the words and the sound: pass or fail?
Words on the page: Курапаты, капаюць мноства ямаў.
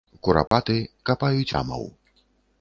fail